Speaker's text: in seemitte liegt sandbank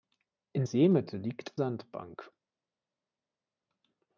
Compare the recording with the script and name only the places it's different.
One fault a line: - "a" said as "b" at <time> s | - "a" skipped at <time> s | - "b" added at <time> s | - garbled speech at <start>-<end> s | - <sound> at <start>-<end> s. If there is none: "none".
none